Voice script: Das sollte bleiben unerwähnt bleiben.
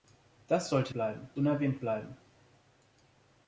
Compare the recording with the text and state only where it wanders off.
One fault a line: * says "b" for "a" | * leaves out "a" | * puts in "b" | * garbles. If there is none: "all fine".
all fine